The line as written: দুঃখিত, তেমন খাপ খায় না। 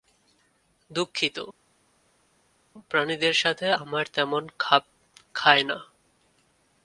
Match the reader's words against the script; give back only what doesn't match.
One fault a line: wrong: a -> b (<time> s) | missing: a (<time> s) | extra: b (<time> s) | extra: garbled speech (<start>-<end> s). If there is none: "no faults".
extra: প্রাণীদের সাথে আমার (2.9 s)